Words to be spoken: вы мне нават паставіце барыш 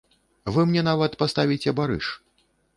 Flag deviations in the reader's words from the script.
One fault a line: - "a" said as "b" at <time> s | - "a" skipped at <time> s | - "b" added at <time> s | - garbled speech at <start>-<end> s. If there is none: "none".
none